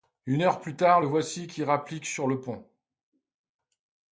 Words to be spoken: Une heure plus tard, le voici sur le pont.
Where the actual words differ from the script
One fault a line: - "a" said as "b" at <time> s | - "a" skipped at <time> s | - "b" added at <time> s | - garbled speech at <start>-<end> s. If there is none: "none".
- "qui rapplique" added at 1.5 s